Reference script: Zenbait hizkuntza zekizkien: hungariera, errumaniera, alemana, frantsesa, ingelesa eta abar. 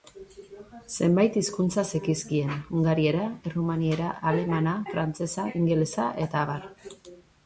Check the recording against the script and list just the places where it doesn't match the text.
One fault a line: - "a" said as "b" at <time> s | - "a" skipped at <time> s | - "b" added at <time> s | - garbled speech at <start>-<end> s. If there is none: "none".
none